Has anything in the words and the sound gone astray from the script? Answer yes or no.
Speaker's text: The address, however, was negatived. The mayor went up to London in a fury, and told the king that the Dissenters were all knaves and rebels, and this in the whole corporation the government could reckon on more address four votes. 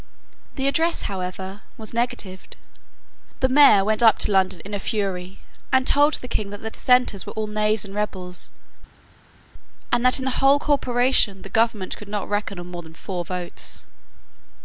yes